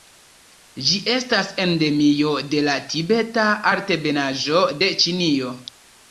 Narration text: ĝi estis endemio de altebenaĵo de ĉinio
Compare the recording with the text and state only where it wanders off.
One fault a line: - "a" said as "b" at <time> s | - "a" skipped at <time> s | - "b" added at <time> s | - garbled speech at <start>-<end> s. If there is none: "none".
- "estis" said as "estas" at 1.1 s
- "la tibeta" added at 2.7 s